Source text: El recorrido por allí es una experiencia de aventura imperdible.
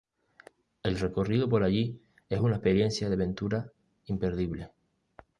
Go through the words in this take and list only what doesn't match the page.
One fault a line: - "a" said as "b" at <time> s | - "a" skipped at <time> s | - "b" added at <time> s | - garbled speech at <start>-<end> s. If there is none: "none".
none